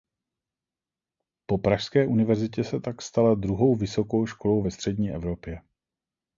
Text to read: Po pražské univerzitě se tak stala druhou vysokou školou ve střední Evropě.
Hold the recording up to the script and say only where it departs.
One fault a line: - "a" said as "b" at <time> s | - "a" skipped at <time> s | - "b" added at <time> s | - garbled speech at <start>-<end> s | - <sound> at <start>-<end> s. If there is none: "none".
none